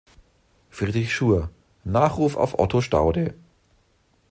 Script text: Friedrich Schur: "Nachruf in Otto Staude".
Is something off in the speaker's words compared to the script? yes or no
yes